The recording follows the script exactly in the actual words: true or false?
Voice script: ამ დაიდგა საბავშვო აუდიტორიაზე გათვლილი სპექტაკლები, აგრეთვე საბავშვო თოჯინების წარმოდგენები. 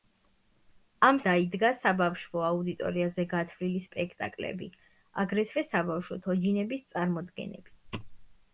true